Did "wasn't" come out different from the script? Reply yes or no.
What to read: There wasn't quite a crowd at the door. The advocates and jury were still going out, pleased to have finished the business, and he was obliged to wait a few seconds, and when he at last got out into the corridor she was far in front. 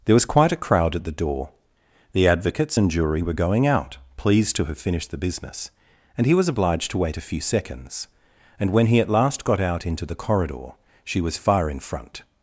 yes